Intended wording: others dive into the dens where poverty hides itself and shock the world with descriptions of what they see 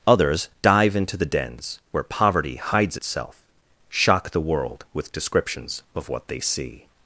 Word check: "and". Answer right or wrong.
wrong